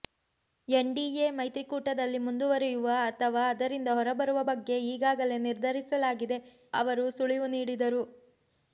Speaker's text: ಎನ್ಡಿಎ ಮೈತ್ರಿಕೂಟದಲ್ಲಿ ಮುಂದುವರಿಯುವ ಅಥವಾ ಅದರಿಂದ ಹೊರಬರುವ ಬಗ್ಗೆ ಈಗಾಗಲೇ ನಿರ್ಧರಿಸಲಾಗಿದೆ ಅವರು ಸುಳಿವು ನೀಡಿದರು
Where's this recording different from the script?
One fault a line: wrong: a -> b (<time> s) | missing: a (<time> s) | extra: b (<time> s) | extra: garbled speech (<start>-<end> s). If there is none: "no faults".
no faults